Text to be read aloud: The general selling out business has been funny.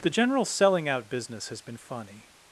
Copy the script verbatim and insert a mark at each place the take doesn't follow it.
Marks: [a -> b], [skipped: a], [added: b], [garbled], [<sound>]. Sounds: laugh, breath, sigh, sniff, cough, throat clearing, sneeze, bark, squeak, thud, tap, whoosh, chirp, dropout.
The general selling out business has been funny.